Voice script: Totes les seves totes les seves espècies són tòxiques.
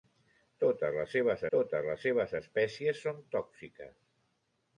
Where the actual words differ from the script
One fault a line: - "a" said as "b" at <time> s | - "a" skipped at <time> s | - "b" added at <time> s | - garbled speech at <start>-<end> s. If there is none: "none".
none